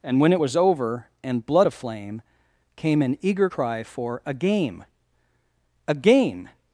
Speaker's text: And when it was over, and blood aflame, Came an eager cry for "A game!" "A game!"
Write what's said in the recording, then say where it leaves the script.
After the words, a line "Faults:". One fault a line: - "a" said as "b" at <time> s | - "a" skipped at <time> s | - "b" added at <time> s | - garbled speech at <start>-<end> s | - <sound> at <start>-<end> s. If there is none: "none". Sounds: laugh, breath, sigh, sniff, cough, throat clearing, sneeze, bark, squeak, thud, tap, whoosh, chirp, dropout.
And when it was over, and blood aflame, Came an eager cry for "A game!" "A game!"
Faults:
none